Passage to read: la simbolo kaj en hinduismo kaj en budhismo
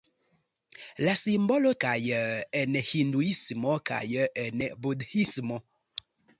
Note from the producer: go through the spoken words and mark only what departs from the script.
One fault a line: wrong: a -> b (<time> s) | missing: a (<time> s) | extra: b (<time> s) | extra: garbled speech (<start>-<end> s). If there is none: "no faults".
no faults